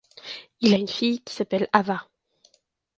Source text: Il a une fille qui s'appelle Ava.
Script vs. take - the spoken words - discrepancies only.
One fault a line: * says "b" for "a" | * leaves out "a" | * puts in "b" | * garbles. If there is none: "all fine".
all fine